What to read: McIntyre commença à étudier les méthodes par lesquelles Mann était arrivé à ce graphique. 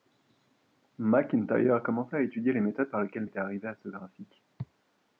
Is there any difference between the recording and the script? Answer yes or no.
yes